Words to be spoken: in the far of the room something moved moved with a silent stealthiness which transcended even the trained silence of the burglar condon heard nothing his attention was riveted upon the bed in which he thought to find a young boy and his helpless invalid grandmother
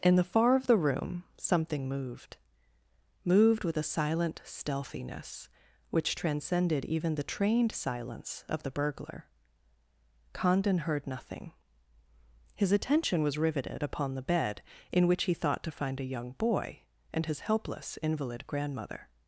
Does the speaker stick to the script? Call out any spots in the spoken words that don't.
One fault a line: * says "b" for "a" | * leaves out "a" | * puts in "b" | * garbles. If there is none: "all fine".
all fine